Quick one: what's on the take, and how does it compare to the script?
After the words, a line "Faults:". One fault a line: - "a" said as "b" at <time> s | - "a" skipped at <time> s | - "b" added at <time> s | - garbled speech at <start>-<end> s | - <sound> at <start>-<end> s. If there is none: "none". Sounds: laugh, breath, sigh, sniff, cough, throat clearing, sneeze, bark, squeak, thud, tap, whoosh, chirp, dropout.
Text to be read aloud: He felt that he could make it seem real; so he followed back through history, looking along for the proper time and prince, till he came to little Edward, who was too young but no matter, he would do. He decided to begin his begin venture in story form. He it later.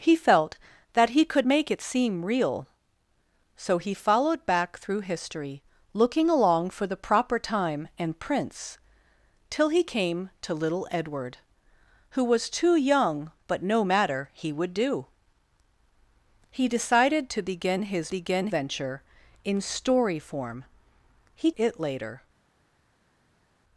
He felt that he could make it seem real; so he followed back through history, looking along for the proper time and prince, till he came to little Edward, who was too young but no matter, he would do. He decided to begin his begin venture in story form. He it later.
Faults:
none